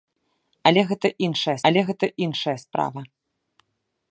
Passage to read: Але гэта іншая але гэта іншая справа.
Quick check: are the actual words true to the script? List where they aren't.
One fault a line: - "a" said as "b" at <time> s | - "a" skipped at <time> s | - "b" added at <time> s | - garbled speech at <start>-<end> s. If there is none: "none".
none